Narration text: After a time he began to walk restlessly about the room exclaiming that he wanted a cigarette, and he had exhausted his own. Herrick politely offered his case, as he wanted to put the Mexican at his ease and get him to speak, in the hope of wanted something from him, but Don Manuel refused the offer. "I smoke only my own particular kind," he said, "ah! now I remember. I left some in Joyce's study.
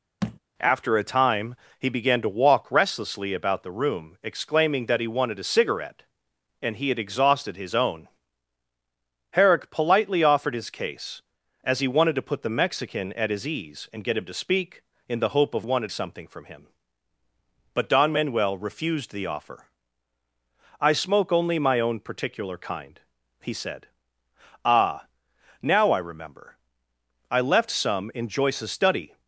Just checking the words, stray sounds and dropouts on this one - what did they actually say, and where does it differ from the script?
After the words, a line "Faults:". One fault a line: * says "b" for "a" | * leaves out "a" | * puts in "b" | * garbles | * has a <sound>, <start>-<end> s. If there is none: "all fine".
After a time he began to walk restlessly about the room exclaiming that he wanted a cigarette, and he had exhausted his own. Herrick politely offered his case, as he wanted to put the Mexican at his ease and get him to speak, in the hope of wanted something from him, but Don Manuel refused the offer. "I smoke only my own particular kind," he said, "ah! now I remember. I left some in Joyce's study.
Faults:
* has a thud, 0.2-0.4 s